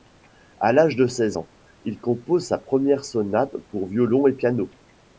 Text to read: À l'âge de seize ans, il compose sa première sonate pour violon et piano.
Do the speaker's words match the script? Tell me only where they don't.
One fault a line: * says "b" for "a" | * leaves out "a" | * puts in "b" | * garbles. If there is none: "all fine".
all fine